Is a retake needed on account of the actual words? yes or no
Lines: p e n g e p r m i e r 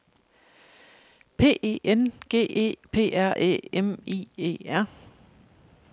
yes